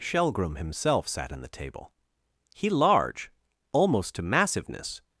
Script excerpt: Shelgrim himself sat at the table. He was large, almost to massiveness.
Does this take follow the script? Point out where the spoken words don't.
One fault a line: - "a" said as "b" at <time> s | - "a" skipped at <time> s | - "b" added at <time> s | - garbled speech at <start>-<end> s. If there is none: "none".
- "at" said as "in" at 1.3 s
- "was" skipped at 2.7 s